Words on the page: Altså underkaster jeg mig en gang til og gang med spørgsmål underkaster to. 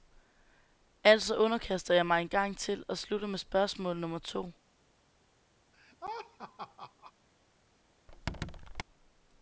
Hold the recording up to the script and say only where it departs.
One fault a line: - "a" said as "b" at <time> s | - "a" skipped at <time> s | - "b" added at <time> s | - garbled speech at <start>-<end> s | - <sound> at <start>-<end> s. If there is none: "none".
- "gang" said as "slutter" at 3.0 s
- "underkaster" said as "nummer" at 4.0 s
- laugh at 5.7-7.1 s
- squeak at 8.1-8.8 s